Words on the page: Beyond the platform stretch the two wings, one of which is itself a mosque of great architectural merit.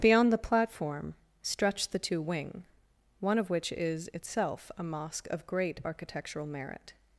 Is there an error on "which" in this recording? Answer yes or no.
no